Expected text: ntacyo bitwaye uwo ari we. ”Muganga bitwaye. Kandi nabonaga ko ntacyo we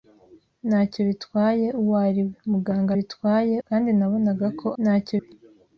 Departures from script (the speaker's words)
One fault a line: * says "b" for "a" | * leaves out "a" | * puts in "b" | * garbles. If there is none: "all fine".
all fine